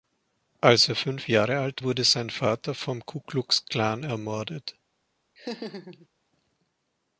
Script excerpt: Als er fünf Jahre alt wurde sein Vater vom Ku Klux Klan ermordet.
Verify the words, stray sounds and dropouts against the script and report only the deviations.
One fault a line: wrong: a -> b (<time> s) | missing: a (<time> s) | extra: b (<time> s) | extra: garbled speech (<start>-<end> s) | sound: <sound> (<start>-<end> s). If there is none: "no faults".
sound: laugh (5.4-6.1 s)